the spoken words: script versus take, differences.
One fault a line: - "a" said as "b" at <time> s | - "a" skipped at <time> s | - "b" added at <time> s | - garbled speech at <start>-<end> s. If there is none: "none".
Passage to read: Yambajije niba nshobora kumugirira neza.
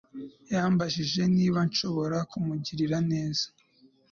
none